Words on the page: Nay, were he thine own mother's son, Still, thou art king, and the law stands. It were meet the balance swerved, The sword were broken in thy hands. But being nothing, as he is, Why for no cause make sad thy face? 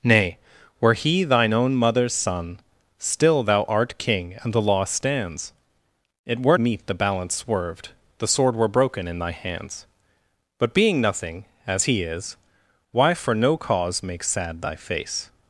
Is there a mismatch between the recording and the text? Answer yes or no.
no